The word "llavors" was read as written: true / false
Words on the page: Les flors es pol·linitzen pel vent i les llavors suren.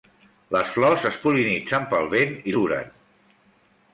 false